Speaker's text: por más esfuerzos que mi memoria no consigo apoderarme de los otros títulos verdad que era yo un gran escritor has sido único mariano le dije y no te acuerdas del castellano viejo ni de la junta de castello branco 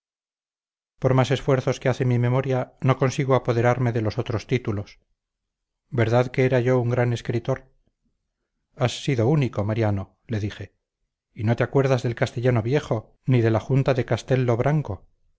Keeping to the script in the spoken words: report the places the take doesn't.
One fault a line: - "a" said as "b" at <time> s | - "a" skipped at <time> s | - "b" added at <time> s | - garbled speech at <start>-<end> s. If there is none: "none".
- "hace" added at 1.9 s